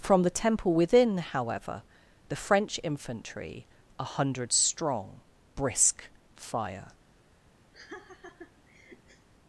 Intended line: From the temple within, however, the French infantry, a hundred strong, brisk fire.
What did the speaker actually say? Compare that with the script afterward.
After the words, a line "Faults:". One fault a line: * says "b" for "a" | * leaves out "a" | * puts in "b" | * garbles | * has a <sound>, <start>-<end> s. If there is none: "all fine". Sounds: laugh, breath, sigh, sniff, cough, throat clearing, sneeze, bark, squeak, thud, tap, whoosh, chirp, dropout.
From the temple within, however, the French infantry, a hundred strong, brisk fire.
Faults:
* has a laugh, 7.7-9.3 s